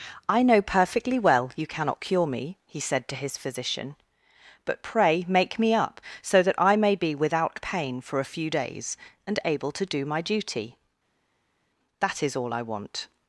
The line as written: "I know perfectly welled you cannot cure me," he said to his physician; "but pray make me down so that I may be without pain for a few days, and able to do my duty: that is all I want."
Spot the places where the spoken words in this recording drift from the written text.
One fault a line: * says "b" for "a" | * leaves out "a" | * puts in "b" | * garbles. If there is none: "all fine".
* says "well" for "welled"
* says "up" for "down"